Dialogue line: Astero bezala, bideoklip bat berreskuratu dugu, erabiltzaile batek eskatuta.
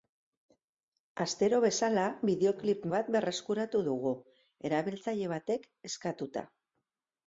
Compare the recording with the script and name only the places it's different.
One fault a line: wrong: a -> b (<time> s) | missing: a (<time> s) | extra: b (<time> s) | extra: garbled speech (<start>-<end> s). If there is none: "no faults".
no faults